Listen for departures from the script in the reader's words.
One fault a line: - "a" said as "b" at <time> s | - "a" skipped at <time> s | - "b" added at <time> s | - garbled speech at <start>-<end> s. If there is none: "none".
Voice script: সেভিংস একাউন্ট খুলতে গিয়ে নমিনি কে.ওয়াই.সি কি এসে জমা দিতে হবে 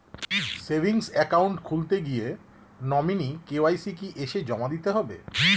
none